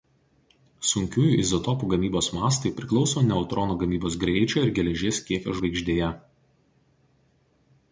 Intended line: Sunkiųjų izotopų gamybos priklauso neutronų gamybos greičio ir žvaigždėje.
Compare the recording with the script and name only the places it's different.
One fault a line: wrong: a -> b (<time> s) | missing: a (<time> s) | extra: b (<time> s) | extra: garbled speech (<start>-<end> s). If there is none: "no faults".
extra: mastai (2.4 s)
extra: geležies kiekio (4.8 s)